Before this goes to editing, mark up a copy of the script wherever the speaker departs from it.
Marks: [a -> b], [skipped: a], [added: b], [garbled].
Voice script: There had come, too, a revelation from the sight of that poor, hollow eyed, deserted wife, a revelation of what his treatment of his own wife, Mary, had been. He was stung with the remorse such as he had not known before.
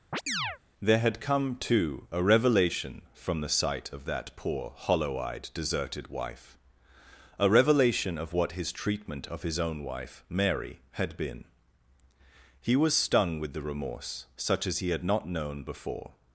There had come, too, a revelation from the sight of that poor, hollow eyed, deserted wife, a revelation of what his treatment of his own wife, Mary, had been. He was stung with the remorse such as he had not known before.